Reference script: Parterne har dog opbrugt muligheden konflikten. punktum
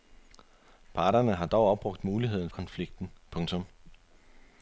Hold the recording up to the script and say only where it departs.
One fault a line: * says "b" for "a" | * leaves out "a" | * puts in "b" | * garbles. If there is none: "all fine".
all fine